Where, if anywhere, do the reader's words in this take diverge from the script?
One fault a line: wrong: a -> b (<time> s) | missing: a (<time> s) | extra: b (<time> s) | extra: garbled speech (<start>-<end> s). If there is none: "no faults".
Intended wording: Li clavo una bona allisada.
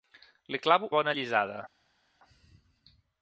missing: una (0.9 s)